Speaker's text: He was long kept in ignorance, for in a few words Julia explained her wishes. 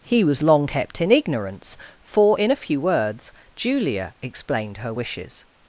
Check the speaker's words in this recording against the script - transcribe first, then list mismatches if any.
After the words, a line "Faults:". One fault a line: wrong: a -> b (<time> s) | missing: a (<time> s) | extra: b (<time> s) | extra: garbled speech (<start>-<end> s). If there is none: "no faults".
He was long kept in ignorance, for in a few words Julia explained her wishes.
Faults:
no faults